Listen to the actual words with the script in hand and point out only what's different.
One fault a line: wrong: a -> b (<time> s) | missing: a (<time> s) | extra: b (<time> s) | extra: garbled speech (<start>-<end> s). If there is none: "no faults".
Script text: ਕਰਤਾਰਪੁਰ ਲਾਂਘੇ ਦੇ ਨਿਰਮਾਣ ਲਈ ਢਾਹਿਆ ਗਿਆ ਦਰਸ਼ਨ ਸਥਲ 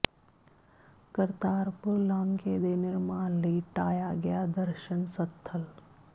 no faults